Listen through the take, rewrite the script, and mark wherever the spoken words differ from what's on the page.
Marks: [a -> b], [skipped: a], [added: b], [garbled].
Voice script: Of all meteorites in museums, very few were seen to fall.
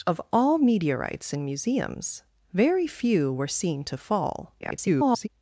Of all meteorites in museums, very few were seen to fall. [garbled]